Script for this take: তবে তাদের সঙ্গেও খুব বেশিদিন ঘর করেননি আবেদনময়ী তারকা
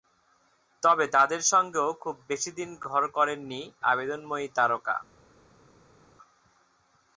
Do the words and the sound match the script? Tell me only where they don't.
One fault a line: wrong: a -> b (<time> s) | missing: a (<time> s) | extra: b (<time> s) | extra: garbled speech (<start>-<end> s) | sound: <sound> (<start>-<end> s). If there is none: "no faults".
no faults